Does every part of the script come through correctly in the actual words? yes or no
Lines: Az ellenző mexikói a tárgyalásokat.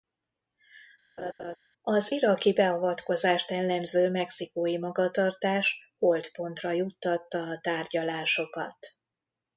no